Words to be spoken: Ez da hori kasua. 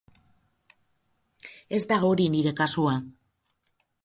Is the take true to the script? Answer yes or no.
no